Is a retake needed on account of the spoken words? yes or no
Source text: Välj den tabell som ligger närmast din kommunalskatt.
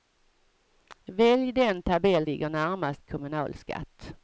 yes